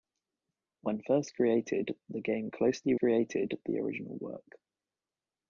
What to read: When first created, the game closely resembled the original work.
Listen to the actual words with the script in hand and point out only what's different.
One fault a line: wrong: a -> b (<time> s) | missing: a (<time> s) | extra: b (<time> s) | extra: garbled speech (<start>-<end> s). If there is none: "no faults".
wrong: resembled -> created (3.0 s)